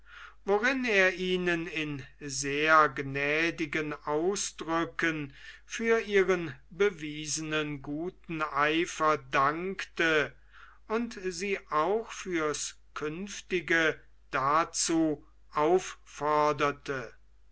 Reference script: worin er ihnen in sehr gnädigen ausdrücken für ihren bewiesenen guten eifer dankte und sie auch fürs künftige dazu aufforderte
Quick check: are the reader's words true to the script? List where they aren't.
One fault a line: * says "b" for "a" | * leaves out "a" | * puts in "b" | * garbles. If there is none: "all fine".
all fine